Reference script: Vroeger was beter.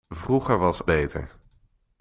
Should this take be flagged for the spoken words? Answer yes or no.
no